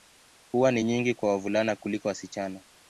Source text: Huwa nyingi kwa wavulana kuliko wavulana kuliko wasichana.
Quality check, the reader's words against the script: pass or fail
fail